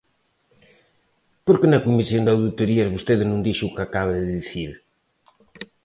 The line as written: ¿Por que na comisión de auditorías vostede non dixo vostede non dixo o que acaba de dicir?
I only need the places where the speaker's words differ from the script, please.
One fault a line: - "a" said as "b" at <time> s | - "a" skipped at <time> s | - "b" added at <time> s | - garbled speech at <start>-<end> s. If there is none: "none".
- "vostede non dixo" skipped at 3.6 s